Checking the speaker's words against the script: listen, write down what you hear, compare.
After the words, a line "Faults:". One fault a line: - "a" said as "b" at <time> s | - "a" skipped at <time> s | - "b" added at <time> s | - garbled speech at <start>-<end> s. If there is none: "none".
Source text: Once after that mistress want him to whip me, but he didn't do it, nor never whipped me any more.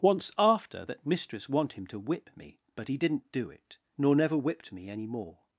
Once after that mistress want him to whip me, but he didn't do it, nor never whipped me any more.
Faults:
none